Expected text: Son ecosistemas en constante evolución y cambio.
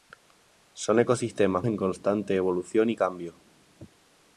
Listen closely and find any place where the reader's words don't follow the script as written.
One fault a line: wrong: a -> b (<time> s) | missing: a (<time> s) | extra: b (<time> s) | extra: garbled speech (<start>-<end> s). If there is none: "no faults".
no faults